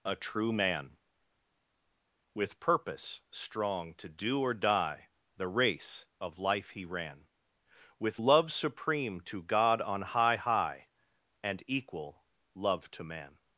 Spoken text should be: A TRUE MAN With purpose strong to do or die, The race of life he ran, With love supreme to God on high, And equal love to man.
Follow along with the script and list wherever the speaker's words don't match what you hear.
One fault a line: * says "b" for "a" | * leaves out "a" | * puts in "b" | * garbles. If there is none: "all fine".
* puts in "high"